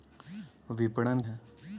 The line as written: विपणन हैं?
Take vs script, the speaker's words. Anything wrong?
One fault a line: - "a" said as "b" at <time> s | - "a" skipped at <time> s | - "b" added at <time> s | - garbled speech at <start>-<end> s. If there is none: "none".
none